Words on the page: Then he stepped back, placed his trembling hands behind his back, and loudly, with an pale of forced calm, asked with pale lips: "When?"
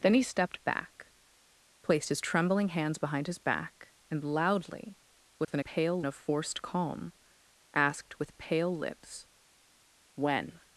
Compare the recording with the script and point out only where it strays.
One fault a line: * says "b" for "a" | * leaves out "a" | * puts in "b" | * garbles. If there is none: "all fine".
all fine